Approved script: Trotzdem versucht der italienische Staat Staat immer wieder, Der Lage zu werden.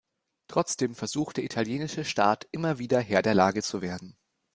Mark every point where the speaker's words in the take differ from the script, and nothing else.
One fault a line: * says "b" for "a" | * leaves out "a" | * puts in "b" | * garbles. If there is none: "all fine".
* leaves out "Staat"
* puts in "Herr"